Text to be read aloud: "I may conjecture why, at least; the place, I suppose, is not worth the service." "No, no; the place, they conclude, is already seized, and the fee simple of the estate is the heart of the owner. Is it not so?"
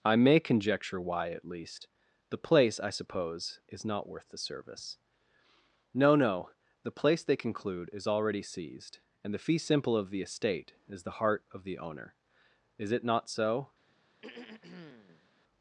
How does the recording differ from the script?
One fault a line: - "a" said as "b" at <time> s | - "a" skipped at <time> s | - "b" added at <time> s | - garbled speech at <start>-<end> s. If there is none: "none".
none